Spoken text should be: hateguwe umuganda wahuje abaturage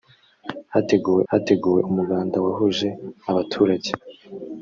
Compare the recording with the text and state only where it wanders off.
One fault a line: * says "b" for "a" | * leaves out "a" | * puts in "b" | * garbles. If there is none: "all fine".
* puts in "hateguwe"